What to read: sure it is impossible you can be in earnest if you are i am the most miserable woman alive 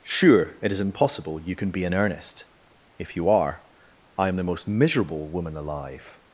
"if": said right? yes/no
yes